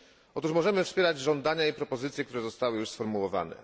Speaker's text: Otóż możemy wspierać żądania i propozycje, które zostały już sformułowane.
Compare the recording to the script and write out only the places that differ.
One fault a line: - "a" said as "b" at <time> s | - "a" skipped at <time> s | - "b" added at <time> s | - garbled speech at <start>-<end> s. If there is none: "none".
none